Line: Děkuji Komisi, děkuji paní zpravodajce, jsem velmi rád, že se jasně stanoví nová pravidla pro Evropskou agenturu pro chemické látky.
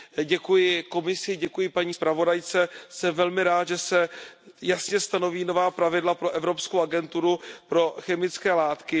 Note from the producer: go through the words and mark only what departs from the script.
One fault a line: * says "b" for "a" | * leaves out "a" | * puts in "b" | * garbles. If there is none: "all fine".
all fine